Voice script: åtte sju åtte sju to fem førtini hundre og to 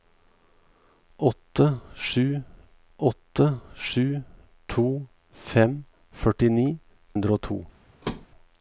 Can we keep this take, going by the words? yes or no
yes